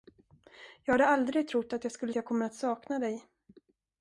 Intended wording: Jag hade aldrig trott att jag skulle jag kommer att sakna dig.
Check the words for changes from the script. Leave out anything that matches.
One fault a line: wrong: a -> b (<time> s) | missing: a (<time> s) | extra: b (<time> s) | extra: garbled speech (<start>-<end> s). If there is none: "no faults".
no faults